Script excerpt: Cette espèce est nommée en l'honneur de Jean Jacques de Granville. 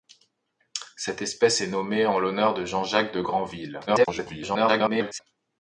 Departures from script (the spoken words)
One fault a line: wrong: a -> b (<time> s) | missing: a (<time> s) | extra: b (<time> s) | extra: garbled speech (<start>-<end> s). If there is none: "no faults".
extra: garbled speech (3.9-5.2 s)